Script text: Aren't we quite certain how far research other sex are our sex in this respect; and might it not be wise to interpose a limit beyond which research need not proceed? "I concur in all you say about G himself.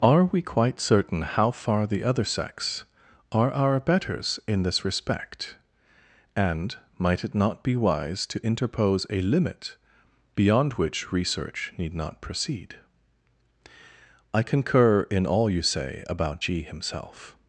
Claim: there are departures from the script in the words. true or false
true